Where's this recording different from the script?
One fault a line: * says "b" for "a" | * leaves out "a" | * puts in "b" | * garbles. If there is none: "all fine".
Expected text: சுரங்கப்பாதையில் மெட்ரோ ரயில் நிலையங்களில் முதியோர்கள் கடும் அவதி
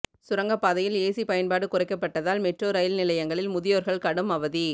* puts in "ஏசி பயன்பாடு குறைக்கப்பட்டதால்"